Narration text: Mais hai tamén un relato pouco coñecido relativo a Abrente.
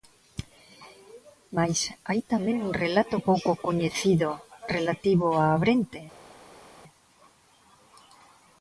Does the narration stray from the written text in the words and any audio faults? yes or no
no